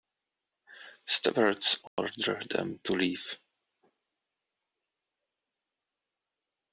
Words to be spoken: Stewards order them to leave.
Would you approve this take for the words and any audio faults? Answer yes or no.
no